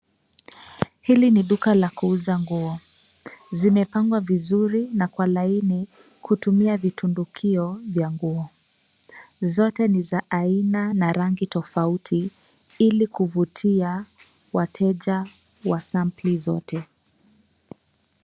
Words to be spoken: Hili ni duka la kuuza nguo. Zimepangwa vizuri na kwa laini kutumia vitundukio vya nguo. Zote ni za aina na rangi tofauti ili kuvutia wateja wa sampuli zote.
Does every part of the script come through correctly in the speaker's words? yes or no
yes